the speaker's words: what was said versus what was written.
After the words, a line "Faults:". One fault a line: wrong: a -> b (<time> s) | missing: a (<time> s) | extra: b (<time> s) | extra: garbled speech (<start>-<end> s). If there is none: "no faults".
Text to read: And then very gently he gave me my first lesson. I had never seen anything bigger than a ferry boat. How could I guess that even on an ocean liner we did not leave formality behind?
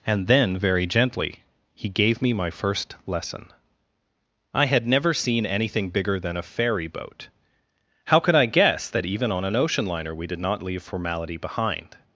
And then very gently he gave me my first lesson. I had never seen anything bigger than a ferry boat. How could I guess that even on an ocean liner we did not leave formality behind?
Faults:
no faults